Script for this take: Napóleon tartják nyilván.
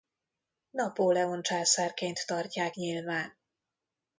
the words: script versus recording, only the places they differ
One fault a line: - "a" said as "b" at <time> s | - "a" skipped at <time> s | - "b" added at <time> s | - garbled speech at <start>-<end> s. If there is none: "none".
- "császárként" added at 1.4 s